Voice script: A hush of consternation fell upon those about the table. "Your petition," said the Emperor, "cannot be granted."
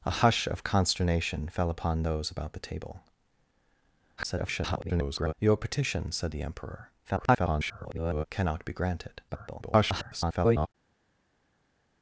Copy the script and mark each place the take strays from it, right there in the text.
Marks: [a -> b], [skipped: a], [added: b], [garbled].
A hush of consternation fell upon those about the table. [garbled] "Your petition," said the Emperor, [garbled] "cannot be granted." [garbled]